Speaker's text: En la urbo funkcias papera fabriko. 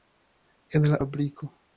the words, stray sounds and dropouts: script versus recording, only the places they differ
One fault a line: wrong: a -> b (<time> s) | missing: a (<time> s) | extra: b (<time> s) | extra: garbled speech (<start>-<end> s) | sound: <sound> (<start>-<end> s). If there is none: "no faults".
missing: urbo funkcias papera (1.0 s)